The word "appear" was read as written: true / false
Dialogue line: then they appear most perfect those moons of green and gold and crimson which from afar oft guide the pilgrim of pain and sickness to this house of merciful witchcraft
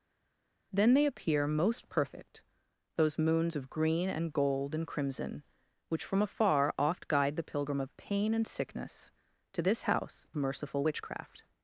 true